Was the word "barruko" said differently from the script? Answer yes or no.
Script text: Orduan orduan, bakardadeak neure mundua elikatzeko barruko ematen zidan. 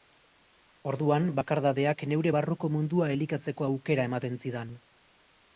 yes